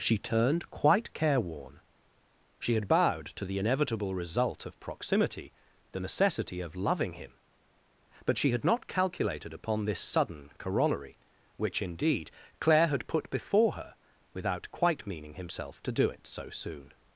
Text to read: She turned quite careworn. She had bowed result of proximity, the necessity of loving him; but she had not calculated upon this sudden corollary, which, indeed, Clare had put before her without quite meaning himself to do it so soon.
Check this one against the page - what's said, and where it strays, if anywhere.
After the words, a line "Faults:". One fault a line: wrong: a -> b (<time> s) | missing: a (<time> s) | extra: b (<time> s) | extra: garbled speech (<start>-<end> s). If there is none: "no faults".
She turned quite careworn. She had bowed to the inevitable result of proximity, the necessity of loving him; but she had not calculated upon this sudden corollary, which, indeed, Clare had put before her without quite meaning himself to do it so soon.
Faults:
extra: to the inevitable (3.4 s)